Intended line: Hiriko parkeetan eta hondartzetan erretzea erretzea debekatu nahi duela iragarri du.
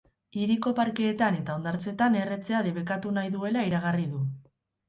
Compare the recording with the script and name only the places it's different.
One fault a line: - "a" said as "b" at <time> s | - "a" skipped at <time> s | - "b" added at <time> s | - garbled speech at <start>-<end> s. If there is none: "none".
- "erretzea" skipped at 2.6 s